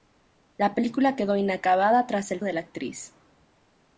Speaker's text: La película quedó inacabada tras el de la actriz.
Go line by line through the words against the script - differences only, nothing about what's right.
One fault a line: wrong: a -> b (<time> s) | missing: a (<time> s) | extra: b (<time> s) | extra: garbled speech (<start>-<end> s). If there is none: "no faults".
no faults